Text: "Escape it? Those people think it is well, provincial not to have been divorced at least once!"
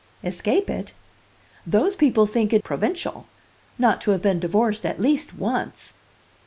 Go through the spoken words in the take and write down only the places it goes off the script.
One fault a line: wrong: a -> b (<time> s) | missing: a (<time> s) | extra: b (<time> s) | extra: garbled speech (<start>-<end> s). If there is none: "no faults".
missing: is well (2.6 s)